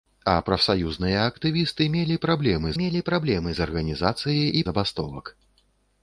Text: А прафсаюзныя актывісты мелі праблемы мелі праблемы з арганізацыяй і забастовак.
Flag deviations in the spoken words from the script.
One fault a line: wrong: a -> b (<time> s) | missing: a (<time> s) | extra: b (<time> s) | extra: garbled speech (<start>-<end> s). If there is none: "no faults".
no faults